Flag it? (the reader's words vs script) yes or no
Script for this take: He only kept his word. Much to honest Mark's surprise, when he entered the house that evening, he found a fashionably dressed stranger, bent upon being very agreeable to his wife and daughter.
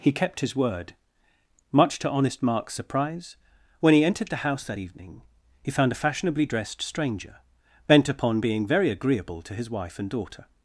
yes